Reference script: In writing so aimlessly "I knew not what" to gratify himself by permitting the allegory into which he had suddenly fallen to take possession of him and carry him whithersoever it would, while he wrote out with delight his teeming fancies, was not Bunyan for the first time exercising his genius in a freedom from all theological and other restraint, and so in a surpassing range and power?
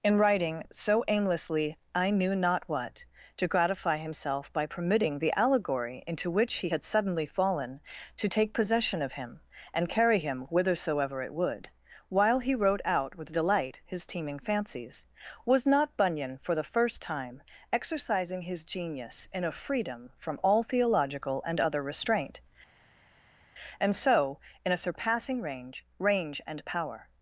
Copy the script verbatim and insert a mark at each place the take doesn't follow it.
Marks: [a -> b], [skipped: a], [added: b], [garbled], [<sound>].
In writing so aimlessly "I knew not what" to gratify himself by permitting the allegory into which he had suddenly fallen to take possession of him and carry him whithersoever it would, while he wrote out with delight his teeming fancies, was not Bunyan for the first time exercising his genius in a freedom from all theological and other restraint, and so in a surpassing range [added: range] and power?